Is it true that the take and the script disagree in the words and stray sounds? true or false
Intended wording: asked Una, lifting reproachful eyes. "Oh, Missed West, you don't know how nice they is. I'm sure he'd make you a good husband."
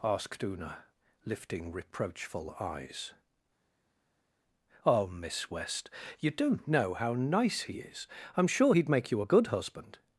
true